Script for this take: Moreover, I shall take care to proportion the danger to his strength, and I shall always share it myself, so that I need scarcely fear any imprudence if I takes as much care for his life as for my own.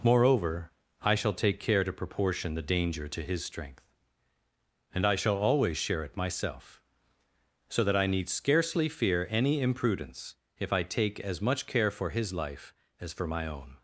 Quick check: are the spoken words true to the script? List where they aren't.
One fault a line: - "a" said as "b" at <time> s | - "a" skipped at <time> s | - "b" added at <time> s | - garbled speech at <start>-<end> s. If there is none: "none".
- "takes" said as "take" at 10.8 s